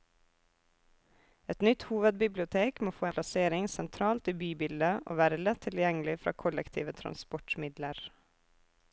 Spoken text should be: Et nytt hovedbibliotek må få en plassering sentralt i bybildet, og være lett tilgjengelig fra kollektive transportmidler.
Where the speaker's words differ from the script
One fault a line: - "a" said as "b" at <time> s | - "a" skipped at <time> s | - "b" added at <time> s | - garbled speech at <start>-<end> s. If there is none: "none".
- "en" skipped at 3.1 s